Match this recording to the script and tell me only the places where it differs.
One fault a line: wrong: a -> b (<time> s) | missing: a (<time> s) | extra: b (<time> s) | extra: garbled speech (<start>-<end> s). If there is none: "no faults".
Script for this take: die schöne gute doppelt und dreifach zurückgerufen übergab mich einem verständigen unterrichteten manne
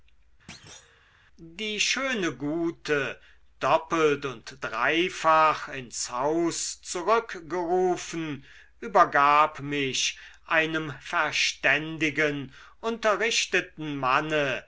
extra: ins haus (5.7 s)